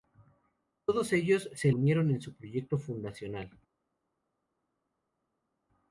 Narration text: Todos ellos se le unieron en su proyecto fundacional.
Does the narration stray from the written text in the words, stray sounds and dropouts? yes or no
yes